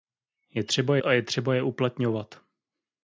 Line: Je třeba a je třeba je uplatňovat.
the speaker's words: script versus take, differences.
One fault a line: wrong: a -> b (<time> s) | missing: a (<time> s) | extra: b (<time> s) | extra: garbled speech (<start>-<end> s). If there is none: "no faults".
no faults